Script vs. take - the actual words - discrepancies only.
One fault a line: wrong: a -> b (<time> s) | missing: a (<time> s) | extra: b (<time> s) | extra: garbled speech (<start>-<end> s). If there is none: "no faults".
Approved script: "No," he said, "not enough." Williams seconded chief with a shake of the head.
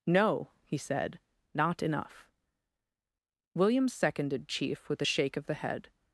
no faults